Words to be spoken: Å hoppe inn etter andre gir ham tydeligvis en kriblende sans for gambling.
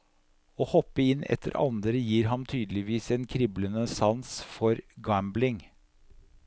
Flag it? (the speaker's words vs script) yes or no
no